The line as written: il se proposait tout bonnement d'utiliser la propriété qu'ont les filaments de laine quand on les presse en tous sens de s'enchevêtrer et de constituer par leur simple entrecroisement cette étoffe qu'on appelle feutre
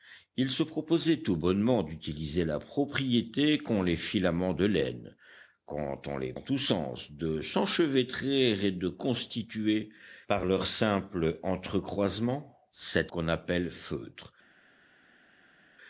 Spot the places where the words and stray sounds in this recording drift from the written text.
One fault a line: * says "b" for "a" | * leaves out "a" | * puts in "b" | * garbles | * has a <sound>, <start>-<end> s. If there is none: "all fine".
* leaves out "presse"
* leaves out "étoffe"